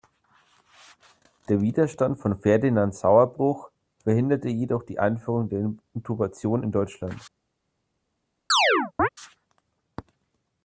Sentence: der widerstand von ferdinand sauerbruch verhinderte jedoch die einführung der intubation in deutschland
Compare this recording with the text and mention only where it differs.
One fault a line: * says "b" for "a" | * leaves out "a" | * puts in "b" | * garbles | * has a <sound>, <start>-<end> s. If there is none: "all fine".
* has a chirp, 8.5-9.1 s